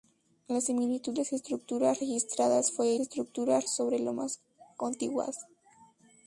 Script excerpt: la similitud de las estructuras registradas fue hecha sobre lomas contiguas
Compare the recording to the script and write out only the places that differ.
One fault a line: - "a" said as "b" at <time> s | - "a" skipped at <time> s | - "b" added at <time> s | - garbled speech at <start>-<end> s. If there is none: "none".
- "de" skipped at 1.1 s
- "hecha" said as "estructuras" at 3.0 s